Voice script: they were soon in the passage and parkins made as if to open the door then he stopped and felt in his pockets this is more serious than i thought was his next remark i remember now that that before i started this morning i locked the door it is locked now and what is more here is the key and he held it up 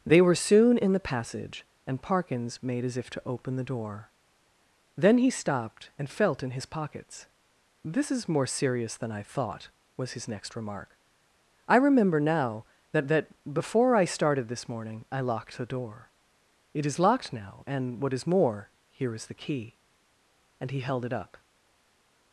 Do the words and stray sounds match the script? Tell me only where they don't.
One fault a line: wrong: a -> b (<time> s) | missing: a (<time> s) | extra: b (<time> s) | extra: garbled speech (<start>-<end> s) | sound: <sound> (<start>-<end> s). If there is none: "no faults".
no faults